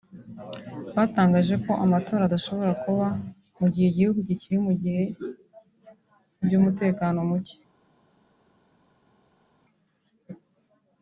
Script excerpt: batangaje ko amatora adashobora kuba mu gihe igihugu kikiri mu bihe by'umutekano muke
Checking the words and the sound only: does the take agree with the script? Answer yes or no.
yes